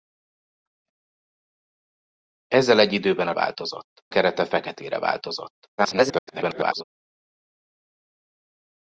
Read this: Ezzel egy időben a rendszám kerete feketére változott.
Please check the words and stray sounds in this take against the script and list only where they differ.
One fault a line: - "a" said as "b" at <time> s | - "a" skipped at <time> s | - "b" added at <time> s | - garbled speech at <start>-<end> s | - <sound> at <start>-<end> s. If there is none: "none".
- "rendszám" said as "változott" at 3.3 s
- garbled speech at 5.8-6.8 s